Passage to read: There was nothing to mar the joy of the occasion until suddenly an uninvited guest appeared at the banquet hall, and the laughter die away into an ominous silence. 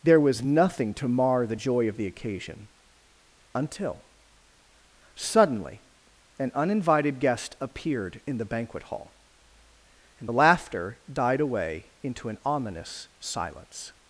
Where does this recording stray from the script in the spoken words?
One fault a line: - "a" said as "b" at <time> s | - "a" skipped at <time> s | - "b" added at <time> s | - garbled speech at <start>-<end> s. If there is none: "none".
- "at" said as "in" at 8.2 s
- "die" said as "died" at 11.1 s